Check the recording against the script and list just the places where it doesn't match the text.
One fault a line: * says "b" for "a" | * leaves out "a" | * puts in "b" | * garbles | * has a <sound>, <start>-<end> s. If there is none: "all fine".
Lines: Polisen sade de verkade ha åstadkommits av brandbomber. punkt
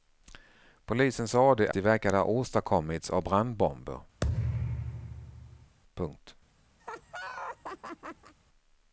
* has a thud, 4.2-5.8 s
* has a laugh, 6.8-8.3 s